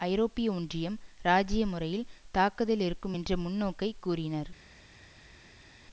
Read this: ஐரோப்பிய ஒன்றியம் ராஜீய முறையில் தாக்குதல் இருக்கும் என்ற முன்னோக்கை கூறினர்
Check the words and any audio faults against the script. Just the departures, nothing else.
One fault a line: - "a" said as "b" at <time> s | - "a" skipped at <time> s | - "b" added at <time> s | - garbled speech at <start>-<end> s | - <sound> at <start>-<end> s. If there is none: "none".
none